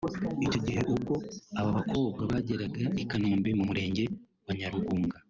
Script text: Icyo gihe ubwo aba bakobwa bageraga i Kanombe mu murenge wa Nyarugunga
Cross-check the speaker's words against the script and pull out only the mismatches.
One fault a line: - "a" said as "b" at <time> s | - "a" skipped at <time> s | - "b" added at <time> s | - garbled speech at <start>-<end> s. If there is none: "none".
none